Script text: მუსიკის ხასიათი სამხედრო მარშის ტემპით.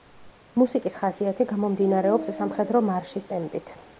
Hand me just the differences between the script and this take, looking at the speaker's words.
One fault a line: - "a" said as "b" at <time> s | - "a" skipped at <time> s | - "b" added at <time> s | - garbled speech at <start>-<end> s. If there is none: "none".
- "გამომდინარეობს" added at 1.5 s